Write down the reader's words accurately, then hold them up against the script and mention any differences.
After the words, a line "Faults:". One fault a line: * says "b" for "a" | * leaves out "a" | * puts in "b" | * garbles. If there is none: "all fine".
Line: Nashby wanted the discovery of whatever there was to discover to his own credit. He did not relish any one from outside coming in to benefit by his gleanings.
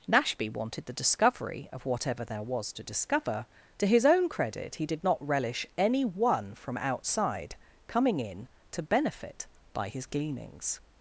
Nashby wanted the discovery of whatever there was to discover to his own credit. He did not relish any one from outside coming in to benefit by his gleanings.
Faults:
all fine